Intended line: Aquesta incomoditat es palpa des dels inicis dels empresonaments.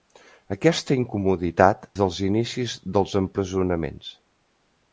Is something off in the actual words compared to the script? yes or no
yes